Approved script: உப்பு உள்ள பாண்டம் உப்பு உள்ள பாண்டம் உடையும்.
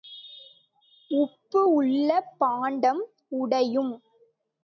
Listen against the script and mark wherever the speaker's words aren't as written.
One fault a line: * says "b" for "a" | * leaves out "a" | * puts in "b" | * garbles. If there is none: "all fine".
* leaves out "உப்பு உள்ள பாண்டம்"